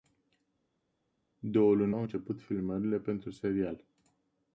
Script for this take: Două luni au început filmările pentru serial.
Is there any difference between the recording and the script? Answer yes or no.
no